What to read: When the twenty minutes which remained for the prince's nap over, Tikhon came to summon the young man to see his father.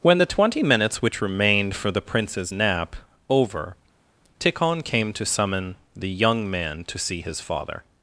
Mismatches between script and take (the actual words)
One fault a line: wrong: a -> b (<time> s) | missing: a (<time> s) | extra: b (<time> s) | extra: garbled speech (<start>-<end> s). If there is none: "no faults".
no faults